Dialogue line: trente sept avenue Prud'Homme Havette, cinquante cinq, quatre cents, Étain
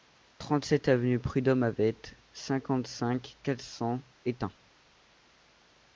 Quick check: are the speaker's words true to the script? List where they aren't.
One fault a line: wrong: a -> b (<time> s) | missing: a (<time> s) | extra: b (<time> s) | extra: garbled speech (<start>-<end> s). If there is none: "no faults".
no faults